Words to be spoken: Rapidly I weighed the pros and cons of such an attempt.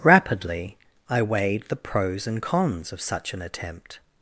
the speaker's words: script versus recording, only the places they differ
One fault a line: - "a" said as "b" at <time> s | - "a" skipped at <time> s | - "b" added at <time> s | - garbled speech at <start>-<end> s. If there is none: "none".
none